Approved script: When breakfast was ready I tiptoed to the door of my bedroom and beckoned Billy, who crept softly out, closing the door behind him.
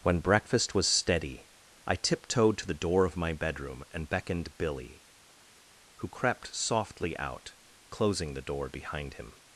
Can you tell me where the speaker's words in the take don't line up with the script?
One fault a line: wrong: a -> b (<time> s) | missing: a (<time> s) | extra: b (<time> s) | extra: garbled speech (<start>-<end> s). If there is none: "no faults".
wrong: ready -> steady (0.9 s)